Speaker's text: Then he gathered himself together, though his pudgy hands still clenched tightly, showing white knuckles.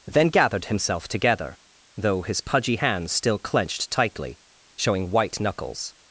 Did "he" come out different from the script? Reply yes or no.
yes